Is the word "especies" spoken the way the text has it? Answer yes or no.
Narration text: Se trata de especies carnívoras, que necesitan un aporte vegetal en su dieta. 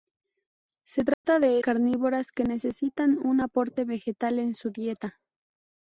no